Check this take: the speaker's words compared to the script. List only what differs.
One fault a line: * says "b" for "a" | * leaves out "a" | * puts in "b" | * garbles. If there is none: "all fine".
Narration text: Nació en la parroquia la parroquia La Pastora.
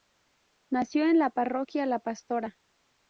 * leaves out "parroquia La"